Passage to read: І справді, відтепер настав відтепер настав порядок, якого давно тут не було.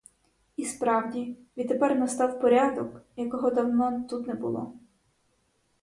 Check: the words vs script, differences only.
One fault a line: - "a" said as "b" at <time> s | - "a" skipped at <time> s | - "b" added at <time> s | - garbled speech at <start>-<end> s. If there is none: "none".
- "відтепер настав" skipped at 2.4 s